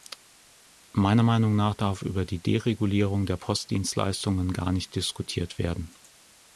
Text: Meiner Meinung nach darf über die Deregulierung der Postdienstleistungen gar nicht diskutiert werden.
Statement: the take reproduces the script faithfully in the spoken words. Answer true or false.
true